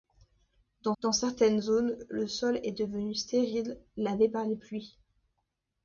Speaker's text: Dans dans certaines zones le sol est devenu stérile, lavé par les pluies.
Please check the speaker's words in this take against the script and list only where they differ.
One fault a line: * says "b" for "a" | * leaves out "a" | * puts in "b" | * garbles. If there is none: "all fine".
all fine